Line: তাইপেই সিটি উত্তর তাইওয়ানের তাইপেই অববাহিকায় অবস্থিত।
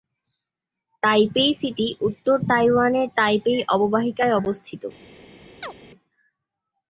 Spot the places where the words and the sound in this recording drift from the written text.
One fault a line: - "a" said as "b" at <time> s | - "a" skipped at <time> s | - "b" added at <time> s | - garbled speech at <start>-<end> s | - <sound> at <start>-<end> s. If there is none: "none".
- chirp at 5.6-5.7 s